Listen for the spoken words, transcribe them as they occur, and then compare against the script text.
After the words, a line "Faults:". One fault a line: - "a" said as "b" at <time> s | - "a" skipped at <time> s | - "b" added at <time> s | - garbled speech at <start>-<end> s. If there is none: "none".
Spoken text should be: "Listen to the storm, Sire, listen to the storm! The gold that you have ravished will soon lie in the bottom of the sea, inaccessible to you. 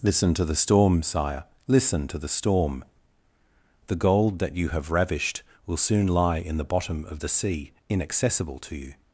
"Listen to the storm, Sire, listen to the storm! The gold that you have ravished will soon lie in the bottom of the sea, inaccessible to you.
Faults:
none